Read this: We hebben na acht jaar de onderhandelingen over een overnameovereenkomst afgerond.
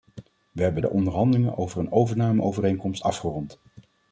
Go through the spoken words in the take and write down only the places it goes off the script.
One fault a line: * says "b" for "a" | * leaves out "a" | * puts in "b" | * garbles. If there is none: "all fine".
* leaves out "na acht jaar"